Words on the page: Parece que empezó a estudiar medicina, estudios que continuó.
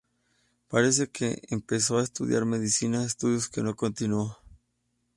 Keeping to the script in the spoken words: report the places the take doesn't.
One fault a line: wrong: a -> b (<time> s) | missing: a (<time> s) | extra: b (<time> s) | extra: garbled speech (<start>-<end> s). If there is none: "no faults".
extra: no (3.6 s)